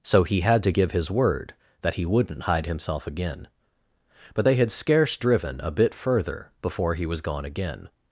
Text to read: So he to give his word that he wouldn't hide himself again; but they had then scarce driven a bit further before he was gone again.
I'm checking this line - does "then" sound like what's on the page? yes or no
no